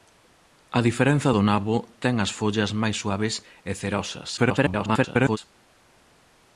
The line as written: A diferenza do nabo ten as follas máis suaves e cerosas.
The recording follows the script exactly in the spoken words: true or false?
false